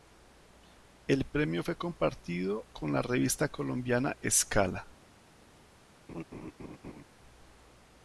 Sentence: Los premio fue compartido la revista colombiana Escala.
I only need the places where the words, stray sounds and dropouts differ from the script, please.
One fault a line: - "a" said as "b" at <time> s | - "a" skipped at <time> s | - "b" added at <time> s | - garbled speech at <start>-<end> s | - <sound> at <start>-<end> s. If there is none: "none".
- "Los" said as "El" at 1.1 s
- "con" added at 2.7 s
- laugh at 6.1-7.0 s